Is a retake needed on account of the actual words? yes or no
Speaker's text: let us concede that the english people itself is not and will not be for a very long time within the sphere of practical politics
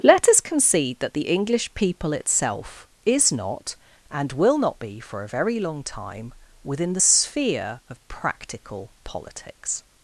no